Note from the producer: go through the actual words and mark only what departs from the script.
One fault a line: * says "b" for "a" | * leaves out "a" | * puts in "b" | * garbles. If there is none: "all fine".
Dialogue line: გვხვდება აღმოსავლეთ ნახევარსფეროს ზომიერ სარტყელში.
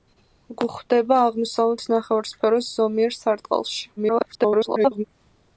* garbles